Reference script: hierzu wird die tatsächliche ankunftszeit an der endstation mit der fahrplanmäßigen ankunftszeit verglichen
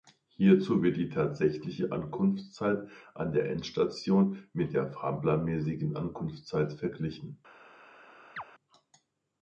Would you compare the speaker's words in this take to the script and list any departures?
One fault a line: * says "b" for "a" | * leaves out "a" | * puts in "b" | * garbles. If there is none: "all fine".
all fine